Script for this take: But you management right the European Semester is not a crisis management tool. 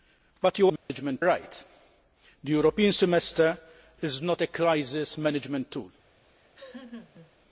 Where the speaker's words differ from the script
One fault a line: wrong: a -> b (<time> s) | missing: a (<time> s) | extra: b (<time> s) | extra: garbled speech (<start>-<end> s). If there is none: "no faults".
no faults